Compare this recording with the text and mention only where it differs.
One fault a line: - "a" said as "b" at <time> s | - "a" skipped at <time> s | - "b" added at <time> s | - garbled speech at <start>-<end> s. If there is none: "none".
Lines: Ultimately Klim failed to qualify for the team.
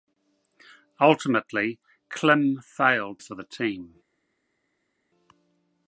- "to qualify" skipped at 3.2 s